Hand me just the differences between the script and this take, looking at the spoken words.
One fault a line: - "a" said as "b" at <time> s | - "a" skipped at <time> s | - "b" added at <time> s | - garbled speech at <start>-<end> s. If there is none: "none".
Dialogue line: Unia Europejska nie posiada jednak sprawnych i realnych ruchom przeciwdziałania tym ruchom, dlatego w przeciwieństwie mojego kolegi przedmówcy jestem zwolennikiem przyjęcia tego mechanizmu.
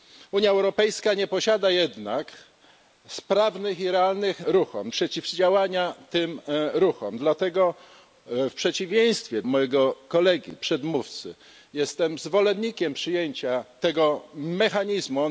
none